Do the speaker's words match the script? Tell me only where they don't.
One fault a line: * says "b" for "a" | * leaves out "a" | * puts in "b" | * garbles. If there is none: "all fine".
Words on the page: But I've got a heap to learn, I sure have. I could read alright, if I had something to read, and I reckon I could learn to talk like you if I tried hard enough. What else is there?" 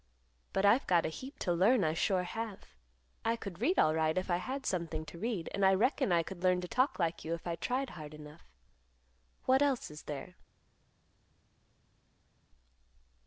all fine